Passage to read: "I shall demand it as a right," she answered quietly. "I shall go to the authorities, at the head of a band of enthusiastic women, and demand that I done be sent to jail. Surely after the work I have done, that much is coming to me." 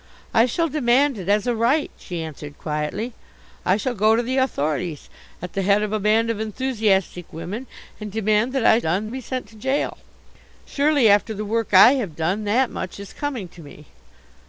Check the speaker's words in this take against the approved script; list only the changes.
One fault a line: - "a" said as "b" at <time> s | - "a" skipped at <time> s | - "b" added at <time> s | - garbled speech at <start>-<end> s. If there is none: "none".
none